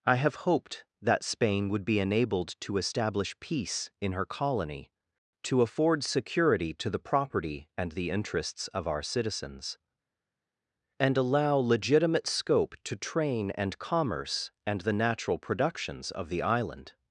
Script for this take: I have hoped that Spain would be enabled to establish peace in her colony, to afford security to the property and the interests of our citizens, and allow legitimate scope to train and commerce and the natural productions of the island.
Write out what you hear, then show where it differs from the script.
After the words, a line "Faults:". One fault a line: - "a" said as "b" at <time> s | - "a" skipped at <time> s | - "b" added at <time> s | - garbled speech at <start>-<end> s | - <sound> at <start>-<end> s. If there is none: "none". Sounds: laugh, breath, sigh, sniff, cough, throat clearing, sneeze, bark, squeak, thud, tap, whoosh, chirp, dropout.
I have hoped that Spain would be enabled to establish peace in her colony, to afford security to the property and the interests of our citizens, and allow legitimate scope to train and commerce and the natural productions of the island.
Faults:
none